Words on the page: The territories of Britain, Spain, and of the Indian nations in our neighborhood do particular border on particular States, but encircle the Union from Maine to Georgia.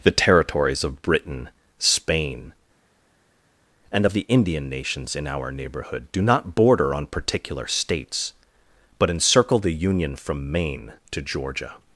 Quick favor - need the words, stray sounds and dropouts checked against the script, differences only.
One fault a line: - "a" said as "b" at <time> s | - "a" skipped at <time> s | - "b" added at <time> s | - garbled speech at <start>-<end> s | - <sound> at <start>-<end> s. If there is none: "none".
- "particular" said as "not" at 6.2 s